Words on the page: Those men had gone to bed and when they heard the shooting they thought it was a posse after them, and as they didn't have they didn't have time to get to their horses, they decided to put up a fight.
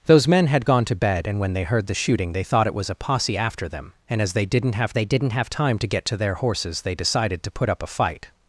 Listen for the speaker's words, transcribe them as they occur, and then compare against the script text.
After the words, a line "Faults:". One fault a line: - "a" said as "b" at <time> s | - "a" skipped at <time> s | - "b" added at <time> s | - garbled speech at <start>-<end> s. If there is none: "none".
Those men had gone to bed and when they heard the shooting they thought it was a posse after them, and as they didn't have they didn't have time to get to their horses, they decided to put up a fight.
Faults:
none